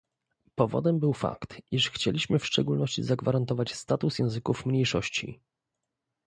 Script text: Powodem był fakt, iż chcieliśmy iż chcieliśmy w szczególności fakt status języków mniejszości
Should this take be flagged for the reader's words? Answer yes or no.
yes